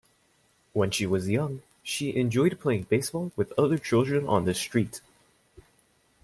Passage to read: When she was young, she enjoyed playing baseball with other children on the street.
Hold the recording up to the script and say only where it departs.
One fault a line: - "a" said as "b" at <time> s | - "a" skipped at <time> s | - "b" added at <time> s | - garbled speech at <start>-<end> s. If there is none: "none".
none